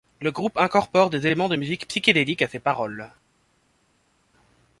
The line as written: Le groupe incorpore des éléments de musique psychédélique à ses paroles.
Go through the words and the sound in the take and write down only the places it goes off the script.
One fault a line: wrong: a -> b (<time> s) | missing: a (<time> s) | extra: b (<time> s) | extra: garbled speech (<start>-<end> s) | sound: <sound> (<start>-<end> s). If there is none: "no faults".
no faults